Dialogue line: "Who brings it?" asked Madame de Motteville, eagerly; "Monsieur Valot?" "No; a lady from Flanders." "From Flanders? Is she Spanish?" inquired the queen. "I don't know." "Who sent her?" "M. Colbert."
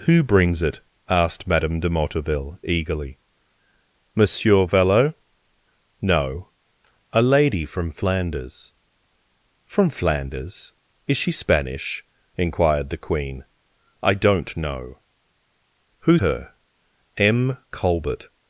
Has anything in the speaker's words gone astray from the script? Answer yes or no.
yes